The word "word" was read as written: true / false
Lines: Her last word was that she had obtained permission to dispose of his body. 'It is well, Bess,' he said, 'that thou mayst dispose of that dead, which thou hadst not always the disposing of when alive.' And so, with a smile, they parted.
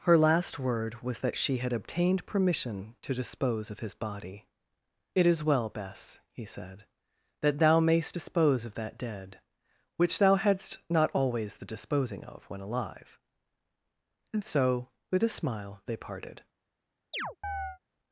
true